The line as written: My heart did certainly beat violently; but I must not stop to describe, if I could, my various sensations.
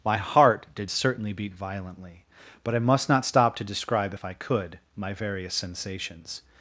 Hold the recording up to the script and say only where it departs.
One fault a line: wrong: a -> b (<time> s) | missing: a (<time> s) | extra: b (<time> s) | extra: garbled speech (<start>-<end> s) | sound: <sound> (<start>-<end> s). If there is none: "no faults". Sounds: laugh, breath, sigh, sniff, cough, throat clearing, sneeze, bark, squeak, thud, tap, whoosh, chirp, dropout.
no faults